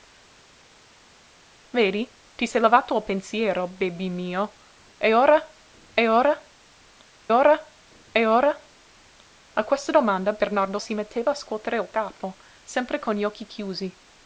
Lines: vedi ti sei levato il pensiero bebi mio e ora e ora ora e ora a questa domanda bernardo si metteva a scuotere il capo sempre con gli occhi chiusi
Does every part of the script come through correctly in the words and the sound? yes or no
yes